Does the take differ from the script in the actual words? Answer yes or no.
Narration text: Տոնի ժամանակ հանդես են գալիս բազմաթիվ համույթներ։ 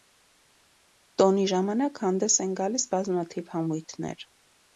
no